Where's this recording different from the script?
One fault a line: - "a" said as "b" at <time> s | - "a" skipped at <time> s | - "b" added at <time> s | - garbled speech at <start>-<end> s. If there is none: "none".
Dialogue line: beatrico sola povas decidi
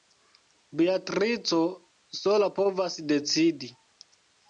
none